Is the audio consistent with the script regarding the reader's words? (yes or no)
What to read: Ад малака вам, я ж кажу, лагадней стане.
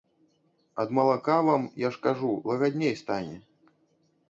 yes